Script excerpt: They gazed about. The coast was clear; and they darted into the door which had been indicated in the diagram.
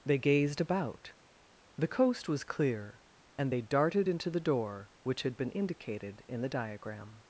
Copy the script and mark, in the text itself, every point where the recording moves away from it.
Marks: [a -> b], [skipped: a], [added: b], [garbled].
They gazed about. The coast was clear; and they darted into the door which had been indicated in the diagram.